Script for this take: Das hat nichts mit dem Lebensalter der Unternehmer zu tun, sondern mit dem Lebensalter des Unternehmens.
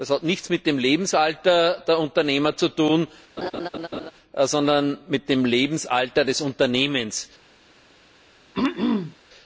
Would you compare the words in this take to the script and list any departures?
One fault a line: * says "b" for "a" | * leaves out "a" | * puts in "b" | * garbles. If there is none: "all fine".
all fine